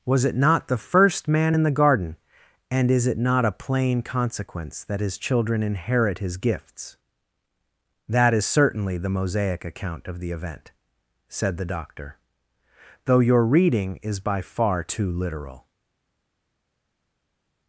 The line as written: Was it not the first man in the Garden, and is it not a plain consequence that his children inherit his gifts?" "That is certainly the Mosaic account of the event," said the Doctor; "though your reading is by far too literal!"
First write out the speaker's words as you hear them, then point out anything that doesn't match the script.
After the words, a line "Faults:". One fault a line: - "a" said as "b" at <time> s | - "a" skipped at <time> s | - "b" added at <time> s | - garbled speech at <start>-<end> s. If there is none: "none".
Was it not the first man in the Garden, and is it not a plain consequence that his children inherit his gifts?" "That is certainly the Mosaic account of the event," said the Doctor; "though your reading is by far too literal!"
Faults:
none